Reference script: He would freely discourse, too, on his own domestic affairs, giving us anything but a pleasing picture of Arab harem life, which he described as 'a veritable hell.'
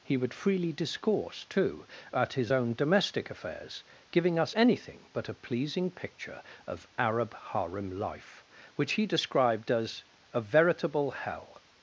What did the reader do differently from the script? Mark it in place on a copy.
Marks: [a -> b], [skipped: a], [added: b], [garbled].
He would freely discourse, too, [on -> at] his own domestic affairs, giving us anything but a pleasing picture of Arab harem life, which he described as 'a veritable hell.'